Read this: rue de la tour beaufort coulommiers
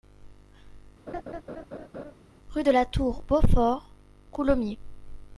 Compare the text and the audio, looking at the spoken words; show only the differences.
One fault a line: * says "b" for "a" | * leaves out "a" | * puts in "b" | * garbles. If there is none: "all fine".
all fine